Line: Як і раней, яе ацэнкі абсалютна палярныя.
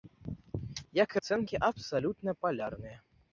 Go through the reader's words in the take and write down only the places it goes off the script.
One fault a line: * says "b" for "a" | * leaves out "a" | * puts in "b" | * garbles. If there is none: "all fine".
* leaves out "раней яе"